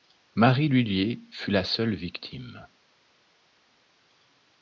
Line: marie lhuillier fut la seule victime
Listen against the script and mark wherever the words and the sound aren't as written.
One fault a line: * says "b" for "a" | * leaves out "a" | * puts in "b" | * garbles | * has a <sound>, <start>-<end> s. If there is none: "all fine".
all fine